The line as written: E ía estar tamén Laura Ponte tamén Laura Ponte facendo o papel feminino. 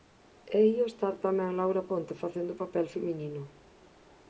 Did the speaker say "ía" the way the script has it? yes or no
yes